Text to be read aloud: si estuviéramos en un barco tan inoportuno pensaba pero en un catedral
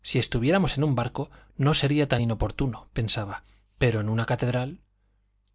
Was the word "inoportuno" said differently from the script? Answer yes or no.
no